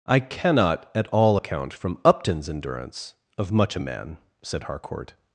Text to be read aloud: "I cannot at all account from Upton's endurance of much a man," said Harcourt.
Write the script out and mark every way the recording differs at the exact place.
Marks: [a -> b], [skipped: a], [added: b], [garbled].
"I cannot at all account from Upton's endurance of much a man," said Harcourt.